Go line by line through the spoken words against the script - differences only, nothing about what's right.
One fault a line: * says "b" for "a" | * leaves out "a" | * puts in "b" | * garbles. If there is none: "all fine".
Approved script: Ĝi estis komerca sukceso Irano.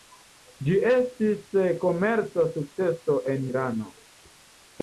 * puts in "en"